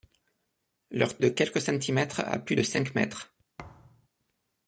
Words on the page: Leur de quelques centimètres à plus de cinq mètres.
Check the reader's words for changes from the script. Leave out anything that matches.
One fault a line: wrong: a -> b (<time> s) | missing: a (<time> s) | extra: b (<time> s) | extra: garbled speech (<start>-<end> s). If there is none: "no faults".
no faults